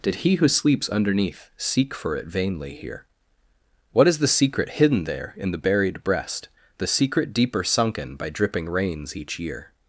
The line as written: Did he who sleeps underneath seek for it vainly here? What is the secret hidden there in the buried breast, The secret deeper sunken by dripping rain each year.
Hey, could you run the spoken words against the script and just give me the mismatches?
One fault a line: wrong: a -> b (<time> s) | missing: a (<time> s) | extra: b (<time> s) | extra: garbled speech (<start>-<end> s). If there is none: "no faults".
wrong: rain -> rains (8.7 s)